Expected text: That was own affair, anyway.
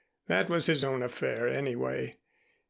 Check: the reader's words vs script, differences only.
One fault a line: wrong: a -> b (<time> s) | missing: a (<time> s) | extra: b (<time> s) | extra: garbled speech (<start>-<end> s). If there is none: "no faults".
extra: his (0.7 s)